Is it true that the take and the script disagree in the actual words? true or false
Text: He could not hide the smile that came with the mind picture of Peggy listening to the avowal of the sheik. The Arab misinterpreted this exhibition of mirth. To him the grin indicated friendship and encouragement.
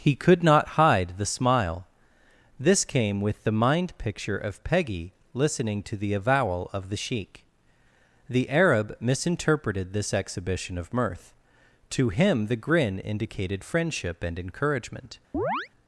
true